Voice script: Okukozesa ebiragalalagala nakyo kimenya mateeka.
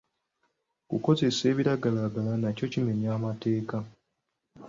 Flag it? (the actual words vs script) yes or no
no